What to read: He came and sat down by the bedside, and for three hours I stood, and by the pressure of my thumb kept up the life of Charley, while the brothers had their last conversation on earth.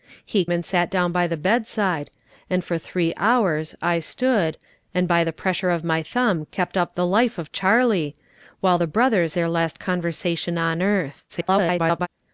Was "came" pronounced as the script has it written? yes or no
no